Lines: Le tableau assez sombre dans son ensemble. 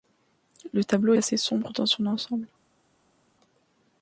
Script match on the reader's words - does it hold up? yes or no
yes